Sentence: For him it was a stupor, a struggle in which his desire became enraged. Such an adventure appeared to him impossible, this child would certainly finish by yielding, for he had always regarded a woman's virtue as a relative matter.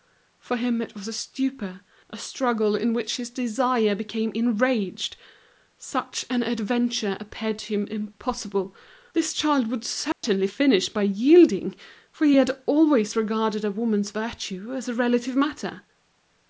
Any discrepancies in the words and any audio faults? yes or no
yes